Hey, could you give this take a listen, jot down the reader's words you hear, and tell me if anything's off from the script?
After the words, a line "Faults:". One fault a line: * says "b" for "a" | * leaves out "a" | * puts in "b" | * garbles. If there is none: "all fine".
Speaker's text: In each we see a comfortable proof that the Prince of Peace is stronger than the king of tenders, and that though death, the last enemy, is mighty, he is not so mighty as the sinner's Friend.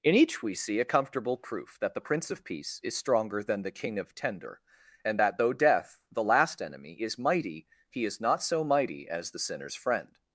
In each we see a comfortable proof that the Prince of Peace is stronger than the king of tender, and that though death, the last enemy, is mighty, he is not so mighty as the sinner's Friend.
Faults:
* says "tender" for "tenders"